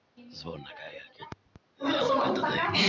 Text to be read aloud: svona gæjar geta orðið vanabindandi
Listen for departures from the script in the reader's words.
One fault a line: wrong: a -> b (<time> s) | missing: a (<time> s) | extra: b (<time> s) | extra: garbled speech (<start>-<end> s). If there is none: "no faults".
no faults